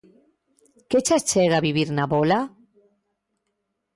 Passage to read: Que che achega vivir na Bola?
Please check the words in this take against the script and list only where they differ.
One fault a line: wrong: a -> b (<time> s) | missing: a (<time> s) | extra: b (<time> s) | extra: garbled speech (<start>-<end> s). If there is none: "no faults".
no faults